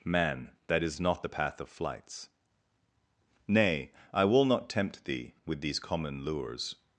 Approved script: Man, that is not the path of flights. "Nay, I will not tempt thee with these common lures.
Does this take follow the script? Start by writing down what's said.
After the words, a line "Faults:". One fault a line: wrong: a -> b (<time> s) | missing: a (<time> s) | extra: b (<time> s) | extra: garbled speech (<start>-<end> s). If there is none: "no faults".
Man, that is not the path of flights. "Nay, I will not tempt thee with these common lures.
Faults:
no faults